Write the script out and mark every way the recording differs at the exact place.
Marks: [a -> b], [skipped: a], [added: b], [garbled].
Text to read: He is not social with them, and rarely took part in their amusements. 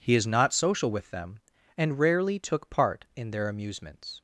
He is not social with them, and rarely took part in their amusements.